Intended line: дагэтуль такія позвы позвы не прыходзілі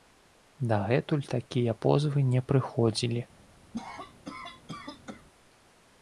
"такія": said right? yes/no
yes